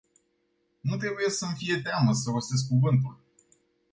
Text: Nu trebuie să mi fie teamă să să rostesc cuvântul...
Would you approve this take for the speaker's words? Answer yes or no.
no